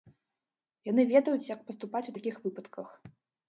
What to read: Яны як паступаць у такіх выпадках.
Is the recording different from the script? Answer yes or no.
yes